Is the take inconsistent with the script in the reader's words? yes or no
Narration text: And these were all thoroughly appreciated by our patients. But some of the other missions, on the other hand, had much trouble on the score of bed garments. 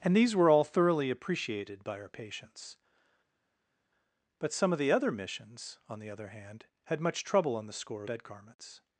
yes